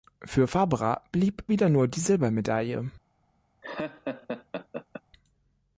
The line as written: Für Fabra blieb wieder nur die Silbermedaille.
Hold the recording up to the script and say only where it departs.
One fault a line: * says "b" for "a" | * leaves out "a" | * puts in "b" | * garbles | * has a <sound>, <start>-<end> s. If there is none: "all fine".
* has a laugh, 3.6-5.0 s